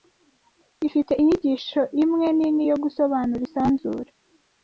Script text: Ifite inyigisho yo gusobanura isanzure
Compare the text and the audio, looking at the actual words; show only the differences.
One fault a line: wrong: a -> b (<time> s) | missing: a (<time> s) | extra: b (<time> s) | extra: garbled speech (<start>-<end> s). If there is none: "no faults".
extra: imwe nini (2.0 s)